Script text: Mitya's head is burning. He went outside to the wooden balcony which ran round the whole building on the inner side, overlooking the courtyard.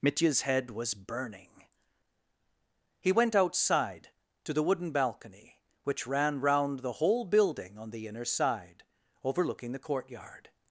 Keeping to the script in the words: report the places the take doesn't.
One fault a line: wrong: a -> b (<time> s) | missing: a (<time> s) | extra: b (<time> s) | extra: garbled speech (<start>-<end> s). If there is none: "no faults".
wrong: is -> was (0.7 s)